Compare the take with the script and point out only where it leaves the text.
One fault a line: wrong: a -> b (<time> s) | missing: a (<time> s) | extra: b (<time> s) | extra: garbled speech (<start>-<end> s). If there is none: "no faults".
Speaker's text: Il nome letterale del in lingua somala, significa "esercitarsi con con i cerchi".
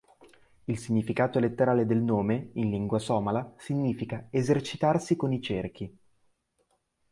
wrong: nome -> significato (0.8 s)
extra: nome (2.0 s)
missing: con (5.3 s)